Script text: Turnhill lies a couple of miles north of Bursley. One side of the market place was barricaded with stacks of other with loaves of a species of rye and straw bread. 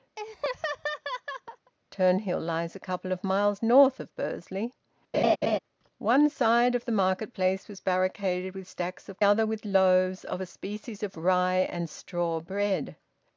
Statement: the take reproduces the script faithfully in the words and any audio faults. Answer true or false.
false